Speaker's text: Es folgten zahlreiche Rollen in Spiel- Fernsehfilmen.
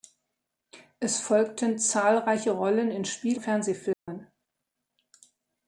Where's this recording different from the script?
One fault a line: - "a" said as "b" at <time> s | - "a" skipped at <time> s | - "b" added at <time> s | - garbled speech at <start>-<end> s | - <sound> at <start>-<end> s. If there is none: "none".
- dropout at 3.9-4.1 s